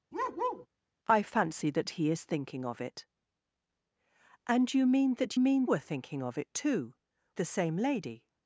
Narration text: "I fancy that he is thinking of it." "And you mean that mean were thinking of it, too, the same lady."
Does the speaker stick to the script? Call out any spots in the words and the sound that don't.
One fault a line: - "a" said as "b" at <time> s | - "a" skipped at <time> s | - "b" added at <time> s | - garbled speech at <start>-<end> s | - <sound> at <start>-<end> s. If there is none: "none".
- bark at 0.1-0.7 s